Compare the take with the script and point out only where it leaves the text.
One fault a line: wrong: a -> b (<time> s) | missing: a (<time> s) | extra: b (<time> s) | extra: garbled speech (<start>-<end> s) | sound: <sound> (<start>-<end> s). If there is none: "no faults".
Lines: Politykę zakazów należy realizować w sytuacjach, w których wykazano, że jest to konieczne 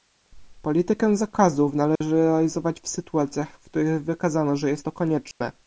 sound: dropout (2.0-2.0 s)
sound: dropout (5.3-5.4 s)